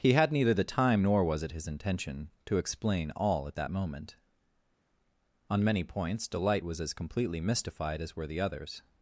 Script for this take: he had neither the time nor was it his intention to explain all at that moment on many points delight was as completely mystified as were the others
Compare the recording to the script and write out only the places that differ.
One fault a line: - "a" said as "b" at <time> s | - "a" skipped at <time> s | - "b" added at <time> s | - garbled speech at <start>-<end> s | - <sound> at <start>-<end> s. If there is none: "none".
none